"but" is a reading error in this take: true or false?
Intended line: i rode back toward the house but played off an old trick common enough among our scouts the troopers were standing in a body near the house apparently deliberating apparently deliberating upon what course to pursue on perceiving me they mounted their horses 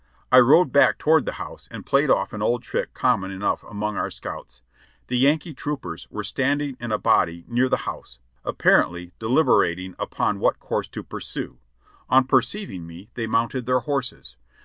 true